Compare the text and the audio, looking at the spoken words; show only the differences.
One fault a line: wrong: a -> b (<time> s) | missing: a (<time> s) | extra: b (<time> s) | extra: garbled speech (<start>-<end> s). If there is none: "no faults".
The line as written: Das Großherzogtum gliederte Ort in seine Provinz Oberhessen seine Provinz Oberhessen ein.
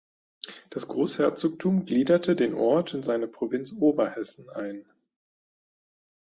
extra: den (2.4 s)
missing: seine Provinz Oberhessen (4.5 s)